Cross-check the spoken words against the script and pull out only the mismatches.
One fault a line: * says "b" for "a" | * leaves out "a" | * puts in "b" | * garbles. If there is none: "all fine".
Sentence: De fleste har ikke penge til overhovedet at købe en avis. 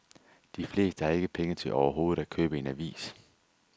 all fine